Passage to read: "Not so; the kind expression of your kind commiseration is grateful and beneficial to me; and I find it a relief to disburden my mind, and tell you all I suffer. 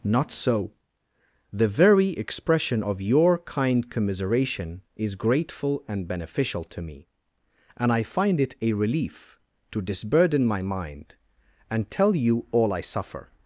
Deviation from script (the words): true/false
true